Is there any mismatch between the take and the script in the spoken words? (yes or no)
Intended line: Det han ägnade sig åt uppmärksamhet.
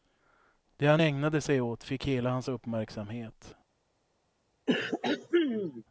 yes